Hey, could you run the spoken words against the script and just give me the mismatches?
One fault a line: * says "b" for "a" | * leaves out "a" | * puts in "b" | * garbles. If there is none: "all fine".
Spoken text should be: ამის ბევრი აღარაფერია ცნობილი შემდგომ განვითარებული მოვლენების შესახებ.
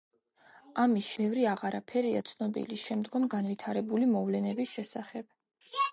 all fine